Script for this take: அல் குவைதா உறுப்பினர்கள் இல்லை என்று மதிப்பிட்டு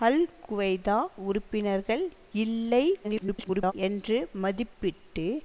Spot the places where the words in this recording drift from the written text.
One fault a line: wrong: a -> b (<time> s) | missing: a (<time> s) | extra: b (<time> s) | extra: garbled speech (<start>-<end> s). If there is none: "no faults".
extra: garbled speech (3.0-3.7 s)